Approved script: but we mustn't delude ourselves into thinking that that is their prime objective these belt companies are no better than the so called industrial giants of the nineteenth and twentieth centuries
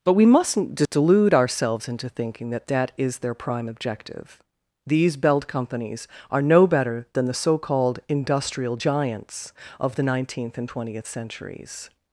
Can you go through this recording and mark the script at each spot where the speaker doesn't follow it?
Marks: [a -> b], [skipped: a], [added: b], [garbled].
but we mustn't delude ourselves into thinking that that is their prime objective these belt companies are no better than the so called industrial giants of the nineteenth and twentieth centuries